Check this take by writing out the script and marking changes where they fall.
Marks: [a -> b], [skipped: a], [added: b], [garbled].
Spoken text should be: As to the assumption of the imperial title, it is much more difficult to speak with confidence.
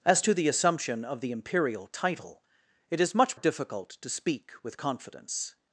As to the assumption of the imperial title, it is much [skipped: more] difficult to speak with confidence.